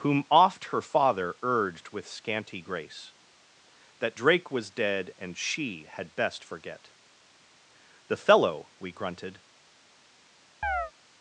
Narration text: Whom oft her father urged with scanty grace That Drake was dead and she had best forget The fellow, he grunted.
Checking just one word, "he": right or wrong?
wrong